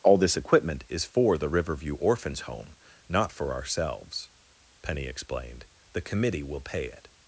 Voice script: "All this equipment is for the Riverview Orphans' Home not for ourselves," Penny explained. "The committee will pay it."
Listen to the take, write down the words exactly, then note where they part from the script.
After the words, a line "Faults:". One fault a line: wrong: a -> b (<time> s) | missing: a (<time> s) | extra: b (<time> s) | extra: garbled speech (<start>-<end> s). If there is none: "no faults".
"All this equipment is for the Riverview Orphans' Home not for ourselves," Penny explained. "The committee will pay it."
Faults:
no faults